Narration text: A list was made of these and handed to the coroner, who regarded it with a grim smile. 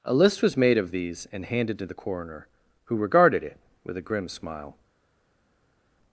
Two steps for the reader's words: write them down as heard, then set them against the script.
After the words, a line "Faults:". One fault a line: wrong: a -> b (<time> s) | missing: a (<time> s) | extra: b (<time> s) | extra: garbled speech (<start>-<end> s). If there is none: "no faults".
A list was made of these and handed to the coroner, who regarded it with a grim smile.
Faults:
no faults